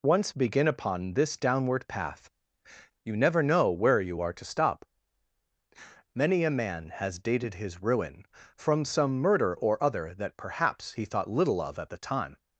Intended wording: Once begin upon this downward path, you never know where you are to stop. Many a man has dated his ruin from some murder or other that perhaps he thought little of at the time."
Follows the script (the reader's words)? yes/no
yes